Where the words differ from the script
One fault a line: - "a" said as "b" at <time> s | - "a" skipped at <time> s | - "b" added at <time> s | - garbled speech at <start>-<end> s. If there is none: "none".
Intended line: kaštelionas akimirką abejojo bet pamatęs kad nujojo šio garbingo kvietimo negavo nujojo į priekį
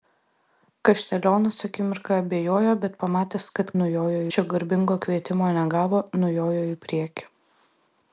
none